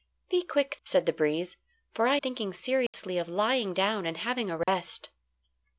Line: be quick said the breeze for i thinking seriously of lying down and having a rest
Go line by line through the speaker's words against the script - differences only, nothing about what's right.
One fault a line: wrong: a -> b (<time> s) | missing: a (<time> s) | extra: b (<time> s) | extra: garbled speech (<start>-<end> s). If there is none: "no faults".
no faults